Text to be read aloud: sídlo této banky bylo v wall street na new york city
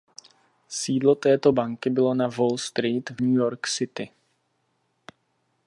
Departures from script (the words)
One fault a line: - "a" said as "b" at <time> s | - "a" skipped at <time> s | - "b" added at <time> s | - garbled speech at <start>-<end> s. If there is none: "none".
- "v" said as "na" at 2.1 s
- "na" said as "v" at 3.1 s